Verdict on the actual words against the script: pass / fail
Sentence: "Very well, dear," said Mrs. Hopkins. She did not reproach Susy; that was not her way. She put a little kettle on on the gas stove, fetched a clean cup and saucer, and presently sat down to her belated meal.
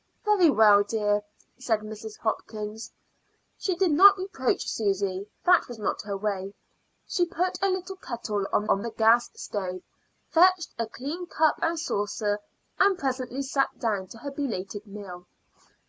pass